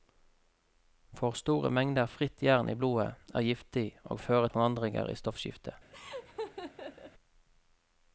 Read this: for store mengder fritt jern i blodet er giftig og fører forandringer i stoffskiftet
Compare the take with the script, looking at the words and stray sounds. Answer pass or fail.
fail